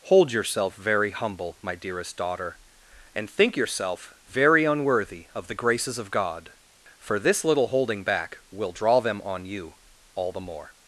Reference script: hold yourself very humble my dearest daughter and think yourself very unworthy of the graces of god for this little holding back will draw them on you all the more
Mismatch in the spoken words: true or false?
false